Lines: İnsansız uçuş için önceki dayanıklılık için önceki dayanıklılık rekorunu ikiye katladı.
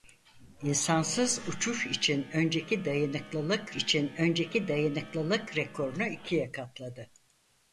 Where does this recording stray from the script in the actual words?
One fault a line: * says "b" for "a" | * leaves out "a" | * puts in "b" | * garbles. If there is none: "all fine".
all fine